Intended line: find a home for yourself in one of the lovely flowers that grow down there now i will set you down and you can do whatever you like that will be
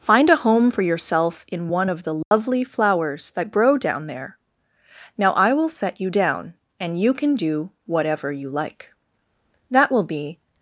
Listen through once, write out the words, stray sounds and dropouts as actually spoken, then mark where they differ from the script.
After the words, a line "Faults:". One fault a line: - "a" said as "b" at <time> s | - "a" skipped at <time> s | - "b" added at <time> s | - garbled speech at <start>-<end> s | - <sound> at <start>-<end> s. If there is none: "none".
find a home for yourself in one of the lovely flowers that grow down there now i will set you down and you can do whatever you like that will be
Faults:
- dropout at 2.2-2.3 s